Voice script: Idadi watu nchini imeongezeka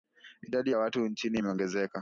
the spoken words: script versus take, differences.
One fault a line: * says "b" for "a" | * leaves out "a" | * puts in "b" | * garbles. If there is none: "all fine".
* puts in "ya"